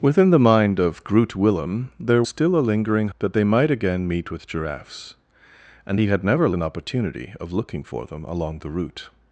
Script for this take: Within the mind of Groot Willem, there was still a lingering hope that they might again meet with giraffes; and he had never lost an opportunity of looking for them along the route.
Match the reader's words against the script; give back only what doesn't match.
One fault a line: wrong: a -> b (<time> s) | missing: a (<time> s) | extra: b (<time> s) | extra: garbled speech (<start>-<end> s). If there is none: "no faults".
missing: was (2.2 s)
missing: hope (3.1 s)
missing: lost (6.5 s)